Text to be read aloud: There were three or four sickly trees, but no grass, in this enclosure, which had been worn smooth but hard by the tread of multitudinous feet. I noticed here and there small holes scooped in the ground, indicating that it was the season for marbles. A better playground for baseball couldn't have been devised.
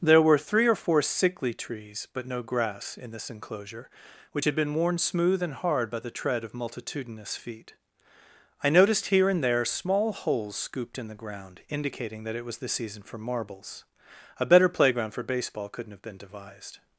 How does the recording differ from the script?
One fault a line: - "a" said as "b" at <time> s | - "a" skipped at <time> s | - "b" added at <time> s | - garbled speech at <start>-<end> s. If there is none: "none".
- "but" said as "and" at 5.4 s